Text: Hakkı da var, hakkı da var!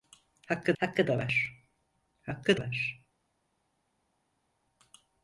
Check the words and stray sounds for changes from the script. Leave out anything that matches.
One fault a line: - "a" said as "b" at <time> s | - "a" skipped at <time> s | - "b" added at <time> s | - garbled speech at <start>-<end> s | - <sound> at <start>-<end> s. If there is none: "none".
- "hakkı" added at 0.8 s
- "da" skipped at 2.6 s